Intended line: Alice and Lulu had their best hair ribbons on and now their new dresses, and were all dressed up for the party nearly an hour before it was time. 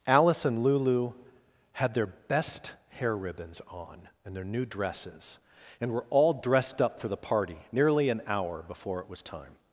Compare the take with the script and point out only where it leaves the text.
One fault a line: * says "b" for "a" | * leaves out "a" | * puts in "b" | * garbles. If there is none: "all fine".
* leaves out "now"